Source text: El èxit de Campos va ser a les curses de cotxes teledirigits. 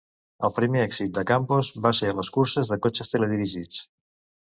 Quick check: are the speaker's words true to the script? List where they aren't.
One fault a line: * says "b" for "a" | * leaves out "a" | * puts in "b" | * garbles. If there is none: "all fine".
* puts in "primer"